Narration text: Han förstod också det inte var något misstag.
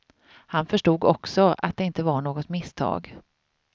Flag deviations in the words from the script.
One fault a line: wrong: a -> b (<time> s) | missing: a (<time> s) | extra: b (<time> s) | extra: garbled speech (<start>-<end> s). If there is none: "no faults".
extra: att (1.6 s)